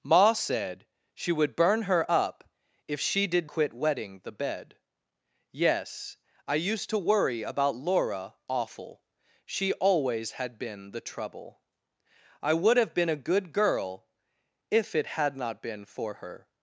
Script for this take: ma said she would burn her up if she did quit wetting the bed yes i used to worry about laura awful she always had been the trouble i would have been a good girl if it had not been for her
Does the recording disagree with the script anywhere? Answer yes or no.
no